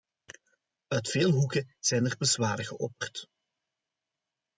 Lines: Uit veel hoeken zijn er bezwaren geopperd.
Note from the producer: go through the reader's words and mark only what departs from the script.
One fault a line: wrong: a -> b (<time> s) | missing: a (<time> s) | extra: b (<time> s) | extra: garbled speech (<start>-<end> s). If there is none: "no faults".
no faults